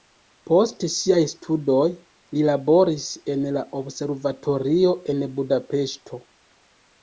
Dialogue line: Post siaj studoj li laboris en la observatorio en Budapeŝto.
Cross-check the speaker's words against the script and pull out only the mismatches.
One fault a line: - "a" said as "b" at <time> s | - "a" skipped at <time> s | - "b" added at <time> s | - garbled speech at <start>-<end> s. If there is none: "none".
none